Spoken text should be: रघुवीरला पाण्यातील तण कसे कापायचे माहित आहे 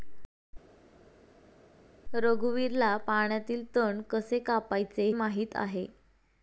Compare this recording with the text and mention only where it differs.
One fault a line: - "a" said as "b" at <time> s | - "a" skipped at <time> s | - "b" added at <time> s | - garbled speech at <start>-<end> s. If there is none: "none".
none